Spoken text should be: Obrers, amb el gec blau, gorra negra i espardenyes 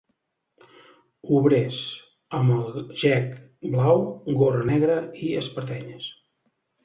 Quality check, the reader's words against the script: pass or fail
pass